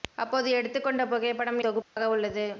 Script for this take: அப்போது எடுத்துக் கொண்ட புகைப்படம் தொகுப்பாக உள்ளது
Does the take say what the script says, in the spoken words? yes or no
yes